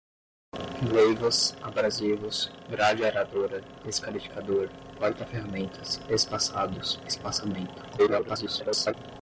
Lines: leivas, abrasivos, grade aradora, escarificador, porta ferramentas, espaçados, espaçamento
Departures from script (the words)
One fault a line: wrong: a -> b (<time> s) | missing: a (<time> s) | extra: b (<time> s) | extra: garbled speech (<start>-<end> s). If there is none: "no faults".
extra: garbled speech (8.0-8.9 s)